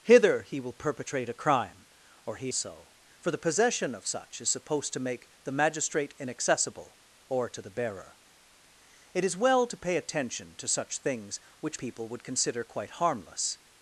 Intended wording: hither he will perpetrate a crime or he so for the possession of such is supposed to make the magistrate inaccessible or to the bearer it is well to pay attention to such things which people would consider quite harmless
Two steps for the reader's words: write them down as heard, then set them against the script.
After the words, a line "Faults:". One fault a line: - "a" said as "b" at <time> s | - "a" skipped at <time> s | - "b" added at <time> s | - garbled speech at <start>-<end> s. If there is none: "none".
hither he will perpetrate a crime or he so for the possession of such is supposed to make the magistrate inaccessible or to the bearer it is well to pay attention to such things which people would consider quite harmless
Faults:
none